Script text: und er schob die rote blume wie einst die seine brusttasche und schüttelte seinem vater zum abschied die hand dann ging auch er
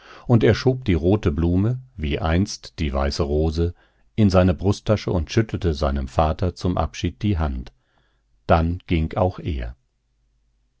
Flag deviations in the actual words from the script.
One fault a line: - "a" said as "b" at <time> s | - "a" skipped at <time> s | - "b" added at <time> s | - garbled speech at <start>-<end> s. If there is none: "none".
- "weiße rose in" added at 2.9 s